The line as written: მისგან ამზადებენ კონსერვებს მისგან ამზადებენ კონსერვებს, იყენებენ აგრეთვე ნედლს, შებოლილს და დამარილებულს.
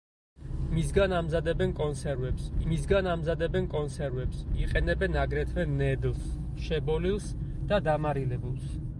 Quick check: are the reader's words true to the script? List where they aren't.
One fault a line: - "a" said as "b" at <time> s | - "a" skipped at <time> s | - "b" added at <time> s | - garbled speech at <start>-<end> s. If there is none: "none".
none